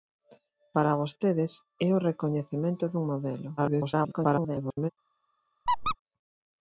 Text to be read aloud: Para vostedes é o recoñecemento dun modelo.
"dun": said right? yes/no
yes